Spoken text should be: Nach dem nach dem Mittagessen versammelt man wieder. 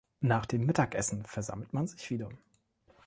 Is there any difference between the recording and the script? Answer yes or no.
yes